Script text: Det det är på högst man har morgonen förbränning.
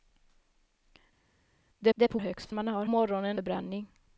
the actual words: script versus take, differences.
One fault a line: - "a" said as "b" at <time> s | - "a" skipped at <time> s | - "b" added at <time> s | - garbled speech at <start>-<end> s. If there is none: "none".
none